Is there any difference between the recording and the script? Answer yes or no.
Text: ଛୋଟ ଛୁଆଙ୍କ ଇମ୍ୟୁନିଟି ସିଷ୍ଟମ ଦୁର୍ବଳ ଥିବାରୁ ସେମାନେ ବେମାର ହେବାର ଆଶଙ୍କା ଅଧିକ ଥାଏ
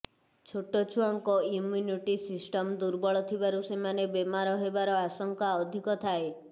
no